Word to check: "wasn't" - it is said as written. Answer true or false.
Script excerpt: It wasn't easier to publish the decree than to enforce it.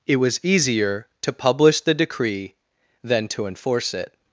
false